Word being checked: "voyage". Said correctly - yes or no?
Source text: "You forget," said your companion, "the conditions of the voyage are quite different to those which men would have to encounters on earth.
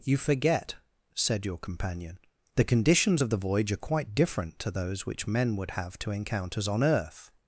yes